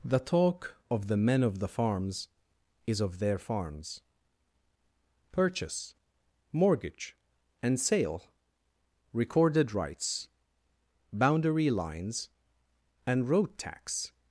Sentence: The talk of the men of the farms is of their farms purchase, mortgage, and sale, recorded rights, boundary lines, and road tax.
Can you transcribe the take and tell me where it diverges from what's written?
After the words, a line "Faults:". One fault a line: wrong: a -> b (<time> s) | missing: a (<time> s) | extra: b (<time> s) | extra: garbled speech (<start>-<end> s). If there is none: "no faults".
The talk of the men of the farms is of their farms purchase, mortgage, and sale, recorded rights, boundary lines, and road tax.
Faults:
no faults